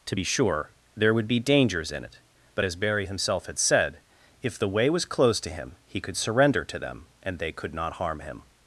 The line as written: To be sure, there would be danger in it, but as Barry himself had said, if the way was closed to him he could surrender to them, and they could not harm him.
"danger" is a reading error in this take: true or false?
true